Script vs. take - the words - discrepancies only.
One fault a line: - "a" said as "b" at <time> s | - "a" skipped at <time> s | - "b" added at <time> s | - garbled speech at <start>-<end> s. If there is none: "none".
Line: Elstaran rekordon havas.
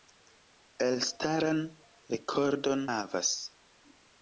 none